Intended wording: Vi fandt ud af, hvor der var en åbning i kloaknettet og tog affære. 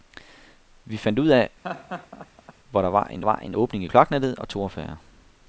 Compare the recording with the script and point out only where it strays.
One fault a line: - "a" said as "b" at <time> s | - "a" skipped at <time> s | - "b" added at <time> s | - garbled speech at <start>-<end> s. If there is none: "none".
- "var en" added at 3.2 s